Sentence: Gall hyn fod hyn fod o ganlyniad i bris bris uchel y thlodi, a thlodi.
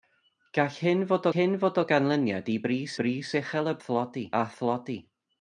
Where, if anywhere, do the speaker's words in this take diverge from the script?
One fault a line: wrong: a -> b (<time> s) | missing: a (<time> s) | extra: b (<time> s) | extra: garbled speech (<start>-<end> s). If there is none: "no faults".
no faults